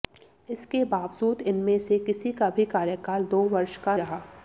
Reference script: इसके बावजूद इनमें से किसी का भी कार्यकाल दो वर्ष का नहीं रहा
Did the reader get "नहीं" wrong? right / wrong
wrong